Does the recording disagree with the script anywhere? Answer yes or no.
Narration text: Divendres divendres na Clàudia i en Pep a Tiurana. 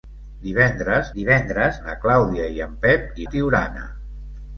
no